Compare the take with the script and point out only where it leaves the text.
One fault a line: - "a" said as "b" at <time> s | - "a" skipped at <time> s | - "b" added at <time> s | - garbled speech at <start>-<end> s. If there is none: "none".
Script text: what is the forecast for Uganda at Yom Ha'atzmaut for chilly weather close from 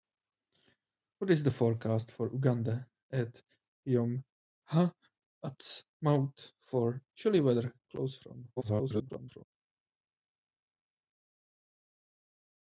- garbled speech at 8.6-9.4 s